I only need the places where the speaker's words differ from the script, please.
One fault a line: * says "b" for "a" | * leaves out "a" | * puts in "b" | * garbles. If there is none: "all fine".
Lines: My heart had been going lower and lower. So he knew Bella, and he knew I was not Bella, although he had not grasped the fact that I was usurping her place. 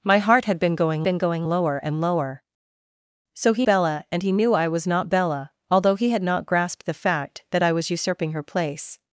* puts in "been going"
* leaves out "knew"